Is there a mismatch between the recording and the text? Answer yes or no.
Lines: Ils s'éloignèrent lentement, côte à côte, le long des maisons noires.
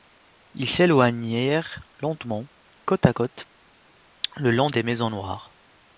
no